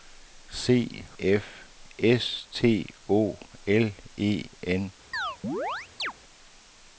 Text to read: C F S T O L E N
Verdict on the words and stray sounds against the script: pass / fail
fail